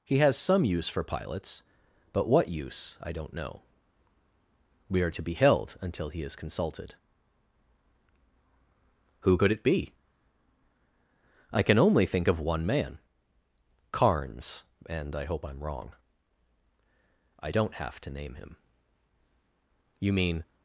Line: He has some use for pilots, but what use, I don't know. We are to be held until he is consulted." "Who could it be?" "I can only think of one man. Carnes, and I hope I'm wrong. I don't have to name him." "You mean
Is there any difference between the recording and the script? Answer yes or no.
no